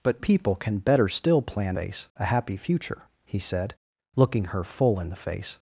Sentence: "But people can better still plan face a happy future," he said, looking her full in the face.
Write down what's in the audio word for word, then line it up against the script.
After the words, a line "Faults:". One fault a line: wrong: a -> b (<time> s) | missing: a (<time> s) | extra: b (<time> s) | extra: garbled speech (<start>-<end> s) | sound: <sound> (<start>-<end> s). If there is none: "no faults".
"But people can better still plan face a happy future," he said, looking her full in the face.
Faults:
no faults